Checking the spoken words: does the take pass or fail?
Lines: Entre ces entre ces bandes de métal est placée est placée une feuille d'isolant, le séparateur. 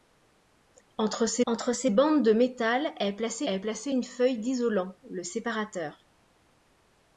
pass